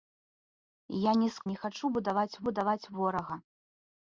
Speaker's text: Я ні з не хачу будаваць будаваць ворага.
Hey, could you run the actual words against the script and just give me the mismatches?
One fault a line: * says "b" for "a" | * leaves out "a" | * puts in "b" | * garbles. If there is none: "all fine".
all fine